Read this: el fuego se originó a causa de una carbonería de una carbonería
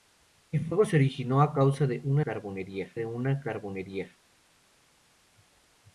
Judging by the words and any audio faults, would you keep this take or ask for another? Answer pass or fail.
pass